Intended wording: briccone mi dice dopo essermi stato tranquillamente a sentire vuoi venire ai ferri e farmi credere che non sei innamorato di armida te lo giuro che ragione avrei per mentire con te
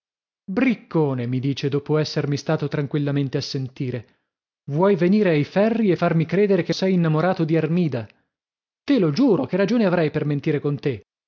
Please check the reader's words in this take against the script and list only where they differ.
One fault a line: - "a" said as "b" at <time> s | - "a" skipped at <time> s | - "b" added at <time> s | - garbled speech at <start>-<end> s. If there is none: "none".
- "non" skipped at 6.7 s